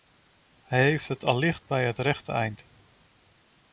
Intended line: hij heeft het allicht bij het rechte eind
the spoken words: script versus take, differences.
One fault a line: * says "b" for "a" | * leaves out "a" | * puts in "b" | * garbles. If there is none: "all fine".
all fine